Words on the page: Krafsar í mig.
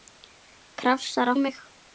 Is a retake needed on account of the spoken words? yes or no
no